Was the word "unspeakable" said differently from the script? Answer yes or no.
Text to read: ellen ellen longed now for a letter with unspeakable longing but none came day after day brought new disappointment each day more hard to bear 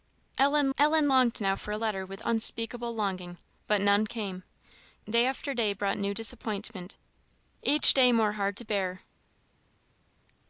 no